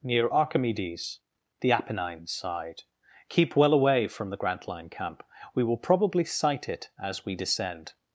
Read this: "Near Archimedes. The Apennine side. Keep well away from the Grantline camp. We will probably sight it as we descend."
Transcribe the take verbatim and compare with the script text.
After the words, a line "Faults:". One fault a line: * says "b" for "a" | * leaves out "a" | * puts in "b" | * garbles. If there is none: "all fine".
"Near Archimedes. The Apennine side. Keep well away from the Grantline camp. We will probably sight it as we descend."
Faults:
all fine